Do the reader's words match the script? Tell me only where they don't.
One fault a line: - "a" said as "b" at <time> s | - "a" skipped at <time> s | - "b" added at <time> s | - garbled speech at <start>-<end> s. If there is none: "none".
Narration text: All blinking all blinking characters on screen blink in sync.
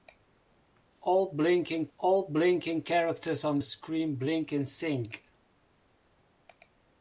none